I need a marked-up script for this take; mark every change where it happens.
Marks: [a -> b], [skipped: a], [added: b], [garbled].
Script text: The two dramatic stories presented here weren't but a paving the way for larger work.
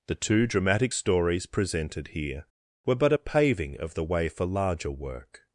The two dramatic stories presented here [weren't -> were] but a paving [added: of] the way for larger work.